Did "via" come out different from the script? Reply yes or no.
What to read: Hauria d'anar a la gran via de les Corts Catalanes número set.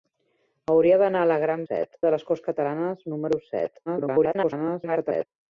yes